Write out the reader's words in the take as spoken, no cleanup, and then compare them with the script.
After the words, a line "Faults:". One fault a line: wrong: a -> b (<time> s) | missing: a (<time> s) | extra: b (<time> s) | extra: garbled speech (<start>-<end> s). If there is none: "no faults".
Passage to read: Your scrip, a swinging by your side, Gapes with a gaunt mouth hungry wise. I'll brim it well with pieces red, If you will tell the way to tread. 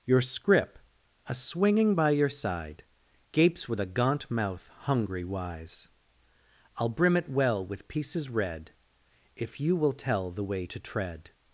Your scrip, a swinging by your side, Gapes with a gaunt mouth hungry wise. I'll brim it well with pieces red, If you will tell the way to tread.
Faults:
no faults